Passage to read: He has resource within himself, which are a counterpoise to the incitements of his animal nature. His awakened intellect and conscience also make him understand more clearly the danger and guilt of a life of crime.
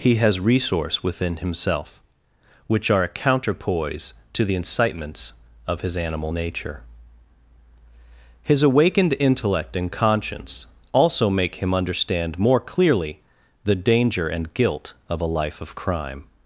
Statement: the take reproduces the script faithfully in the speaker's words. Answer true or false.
true